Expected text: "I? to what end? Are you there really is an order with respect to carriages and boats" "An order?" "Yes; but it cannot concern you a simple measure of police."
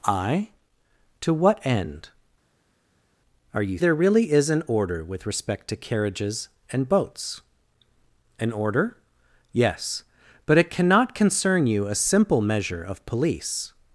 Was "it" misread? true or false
false